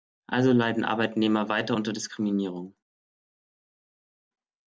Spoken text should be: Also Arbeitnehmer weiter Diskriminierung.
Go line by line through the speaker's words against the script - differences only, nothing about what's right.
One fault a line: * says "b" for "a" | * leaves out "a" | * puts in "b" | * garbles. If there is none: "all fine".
* puts in "leiden"
* puts in "unter"